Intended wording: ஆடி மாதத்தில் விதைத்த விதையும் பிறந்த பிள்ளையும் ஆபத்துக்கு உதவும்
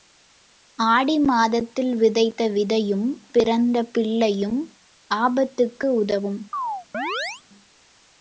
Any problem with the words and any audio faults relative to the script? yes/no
yes